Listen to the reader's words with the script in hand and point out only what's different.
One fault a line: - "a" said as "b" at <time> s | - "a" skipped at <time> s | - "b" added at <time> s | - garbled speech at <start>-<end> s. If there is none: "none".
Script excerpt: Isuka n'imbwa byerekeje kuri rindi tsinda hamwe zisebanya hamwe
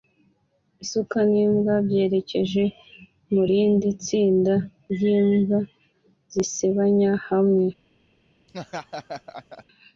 - "kuri" said as "mu" at 3.3 s
- "hamwe" said as "ry'imbwa" at 4.9 s